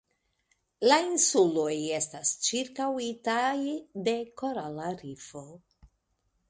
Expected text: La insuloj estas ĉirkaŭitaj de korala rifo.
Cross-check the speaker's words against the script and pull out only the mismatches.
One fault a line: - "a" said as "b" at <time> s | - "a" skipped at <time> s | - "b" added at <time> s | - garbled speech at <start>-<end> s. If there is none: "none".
none